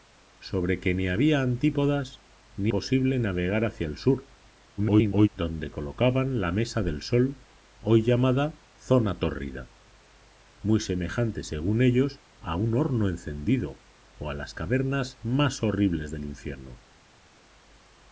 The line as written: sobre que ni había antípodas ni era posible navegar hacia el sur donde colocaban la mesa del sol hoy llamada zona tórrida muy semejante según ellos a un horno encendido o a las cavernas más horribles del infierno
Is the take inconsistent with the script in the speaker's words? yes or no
yes